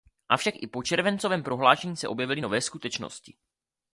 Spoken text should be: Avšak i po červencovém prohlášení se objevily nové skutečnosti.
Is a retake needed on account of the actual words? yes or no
no